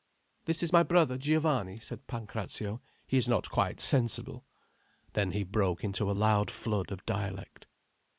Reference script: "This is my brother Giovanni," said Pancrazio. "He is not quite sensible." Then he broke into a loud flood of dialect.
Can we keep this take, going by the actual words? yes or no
yes